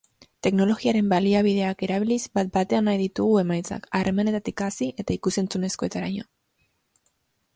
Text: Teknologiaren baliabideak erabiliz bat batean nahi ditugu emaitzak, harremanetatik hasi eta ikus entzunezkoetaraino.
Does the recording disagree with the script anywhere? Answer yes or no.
no